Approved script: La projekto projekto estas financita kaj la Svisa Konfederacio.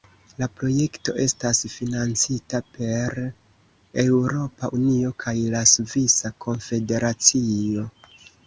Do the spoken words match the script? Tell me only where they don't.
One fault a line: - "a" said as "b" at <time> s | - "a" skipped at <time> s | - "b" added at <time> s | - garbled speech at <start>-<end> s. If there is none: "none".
- "projekto" skipped at 1.1 s
- "per Eŭropa Unio" added at 2.8 s